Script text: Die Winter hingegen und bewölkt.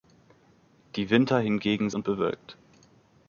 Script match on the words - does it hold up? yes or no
yes